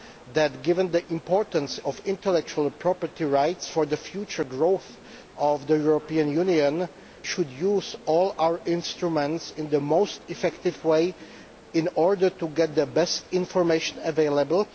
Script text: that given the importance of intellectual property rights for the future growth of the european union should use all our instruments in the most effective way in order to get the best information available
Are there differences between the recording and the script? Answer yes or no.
no